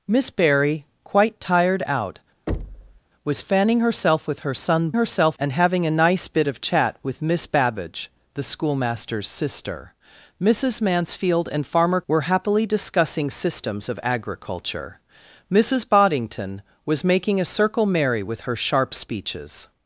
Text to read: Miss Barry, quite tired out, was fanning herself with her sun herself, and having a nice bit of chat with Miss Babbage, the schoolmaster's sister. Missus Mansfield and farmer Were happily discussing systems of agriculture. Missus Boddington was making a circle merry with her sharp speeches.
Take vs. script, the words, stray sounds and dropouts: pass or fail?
fail